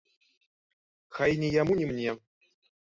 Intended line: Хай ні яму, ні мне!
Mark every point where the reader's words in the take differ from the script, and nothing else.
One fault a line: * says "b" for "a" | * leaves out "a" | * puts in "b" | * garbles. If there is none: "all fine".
all fine